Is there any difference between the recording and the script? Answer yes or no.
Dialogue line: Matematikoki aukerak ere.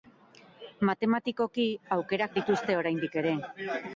yes